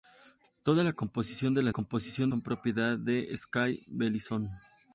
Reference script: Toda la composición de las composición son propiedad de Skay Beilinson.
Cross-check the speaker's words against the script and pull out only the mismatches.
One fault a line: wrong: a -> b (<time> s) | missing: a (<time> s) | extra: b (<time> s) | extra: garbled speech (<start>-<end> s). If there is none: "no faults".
no faults